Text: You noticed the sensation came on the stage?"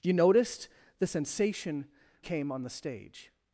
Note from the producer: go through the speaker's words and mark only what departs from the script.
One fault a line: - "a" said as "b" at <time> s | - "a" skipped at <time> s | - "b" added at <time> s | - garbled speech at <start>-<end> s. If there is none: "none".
none